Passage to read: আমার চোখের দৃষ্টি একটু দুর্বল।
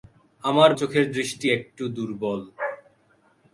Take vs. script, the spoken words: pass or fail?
pass